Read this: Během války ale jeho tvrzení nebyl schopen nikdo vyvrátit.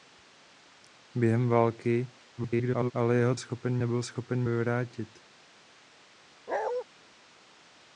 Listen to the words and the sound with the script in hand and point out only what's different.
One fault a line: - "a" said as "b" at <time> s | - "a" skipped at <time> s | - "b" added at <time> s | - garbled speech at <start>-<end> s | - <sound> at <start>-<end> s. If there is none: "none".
- garbled speech at 2.4-2.9 s
- "tvrzení" said as "schopen" at 3.4 s
- "nikdo" skipped at 4.4 s
- bark at 6.5-6.8 s